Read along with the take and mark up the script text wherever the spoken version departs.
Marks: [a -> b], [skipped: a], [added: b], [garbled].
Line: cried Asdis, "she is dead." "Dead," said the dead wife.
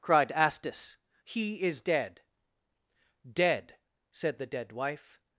cried Asdis, ["she -> he] is dead." "Dead," said the dead wife.